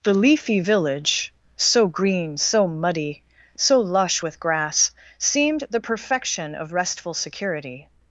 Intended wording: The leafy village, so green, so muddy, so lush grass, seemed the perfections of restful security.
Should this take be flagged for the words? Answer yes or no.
yes